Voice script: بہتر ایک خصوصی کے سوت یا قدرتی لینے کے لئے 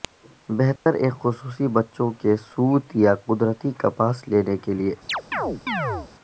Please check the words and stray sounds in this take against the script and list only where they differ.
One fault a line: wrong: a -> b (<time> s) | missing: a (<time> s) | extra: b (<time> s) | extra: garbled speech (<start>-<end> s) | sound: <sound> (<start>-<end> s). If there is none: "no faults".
sound: dropout (0.8-0.9 s)
extra: بچوں (1.8 s)
extra: کپاس (3.8 s)
sound: chirp (5.1-6.1 s)